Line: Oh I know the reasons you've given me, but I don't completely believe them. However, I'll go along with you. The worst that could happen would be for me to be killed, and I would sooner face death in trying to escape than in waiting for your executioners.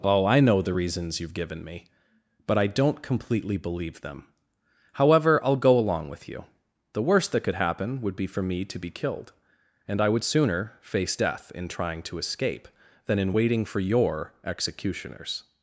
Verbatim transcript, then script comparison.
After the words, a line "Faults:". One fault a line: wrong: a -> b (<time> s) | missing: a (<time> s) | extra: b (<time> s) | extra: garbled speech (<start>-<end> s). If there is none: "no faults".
Oh I know the reasons you've given me, but I don't completely believe them. However, I'll go along with you. The worst that could happen would be for me to be killed, and I would sooner face death in trying to escape than in waiting for your executioners.
Faults:
no faults